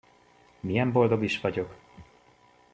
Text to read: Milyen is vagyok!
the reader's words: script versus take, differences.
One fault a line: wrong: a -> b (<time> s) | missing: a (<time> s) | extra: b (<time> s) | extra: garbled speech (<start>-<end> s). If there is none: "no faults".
extra: boldog (0.9 s)